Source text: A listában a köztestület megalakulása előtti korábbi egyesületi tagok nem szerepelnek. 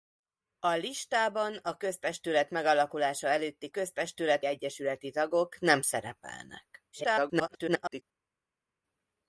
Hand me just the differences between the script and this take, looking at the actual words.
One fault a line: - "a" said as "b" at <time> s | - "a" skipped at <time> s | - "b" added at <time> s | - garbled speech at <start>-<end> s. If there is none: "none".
- "korábbi" said as "köztestület" at 3.7 s
- garbled speech at 6.9-8.0 s